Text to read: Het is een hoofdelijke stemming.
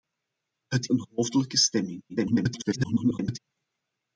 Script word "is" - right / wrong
wrong